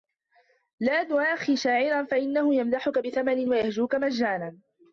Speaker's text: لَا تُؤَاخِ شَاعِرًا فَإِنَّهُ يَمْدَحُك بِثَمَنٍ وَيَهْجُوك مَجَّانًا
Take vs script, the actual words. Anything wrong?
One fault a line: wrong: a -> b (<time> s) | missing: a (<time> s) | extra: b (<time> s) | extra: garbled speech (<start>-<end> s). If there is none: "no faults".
no faults